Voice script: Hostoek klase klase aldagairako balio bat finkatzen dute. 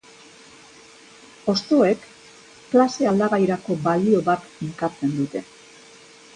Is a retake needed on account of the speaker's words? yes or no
yes